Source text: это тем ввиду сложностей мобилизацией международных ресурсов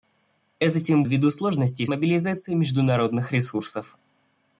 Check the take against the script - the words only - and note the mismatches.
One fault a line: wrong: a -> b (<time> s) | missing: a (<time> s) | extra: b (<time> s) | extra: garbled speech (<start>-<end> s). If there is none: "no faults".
no faults